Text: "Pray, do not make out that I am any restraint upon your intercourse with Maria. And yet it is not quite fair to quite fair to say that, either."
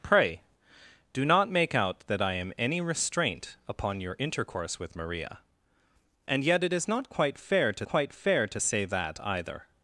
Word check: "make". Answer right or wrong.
right